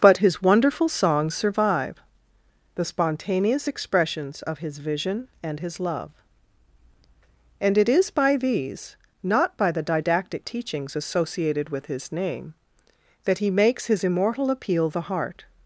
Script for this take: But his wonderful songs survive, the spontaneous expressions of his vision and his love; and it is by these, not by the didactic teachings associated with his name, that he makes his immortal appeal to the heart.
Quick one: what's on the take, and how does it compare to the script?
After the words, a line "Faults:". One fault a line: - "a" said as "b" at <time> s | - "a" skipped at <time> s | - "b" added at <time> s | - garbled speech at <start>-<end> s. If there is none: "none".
But his wonderful songs survive, the spontaneous expressions of his vision and his love; and it is by these, not by the didactic teachings associated with his name, that he makes his immortal appeal the heart.
Faults:
- "to" skipped at 14.9 s